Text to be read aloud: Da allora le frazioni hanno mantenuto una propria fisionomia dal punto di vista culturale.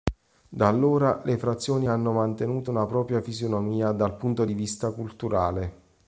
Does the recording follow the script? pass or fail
pass